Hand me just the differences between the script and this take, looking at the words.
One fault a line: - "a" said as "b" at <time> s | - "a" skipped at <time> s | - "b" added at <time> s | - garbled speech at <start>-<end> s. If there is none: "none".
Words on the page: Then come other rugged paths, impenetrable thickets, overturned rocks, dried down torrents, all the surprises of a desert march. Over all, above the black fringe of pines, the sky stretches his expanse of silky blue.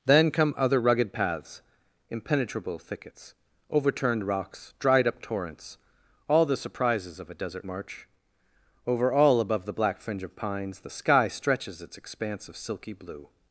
- "down" said as "up" at 5.1 s
- "his" said as "its" at 11.8 s